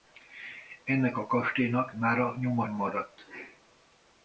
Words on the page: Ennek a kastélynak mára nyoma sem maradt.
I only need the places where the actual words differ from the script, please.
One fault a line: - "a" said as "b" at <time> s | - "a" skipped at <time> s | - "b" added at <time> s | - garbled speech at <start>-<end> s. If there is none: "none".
- "sem" skipped at 2.7 s